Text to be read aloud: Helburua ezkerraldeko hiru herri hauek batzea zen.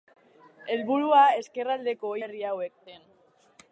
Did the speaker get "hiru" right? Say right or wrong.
wrong